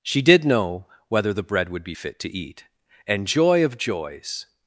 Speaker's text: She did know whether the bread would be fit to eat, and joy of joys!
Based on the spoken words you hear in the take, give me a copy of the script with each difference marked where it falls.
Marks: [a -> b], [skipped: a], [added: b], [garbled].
She did know whether the bread would be fit to eat, and joy of joys!